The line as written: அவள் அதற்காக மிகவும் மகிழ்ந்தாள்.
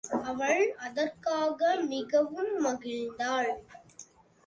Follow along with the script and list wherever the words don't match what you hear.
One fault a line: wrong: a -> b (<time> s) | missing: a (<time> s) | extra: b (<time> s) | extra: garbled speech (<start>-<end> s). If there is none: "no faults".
no faults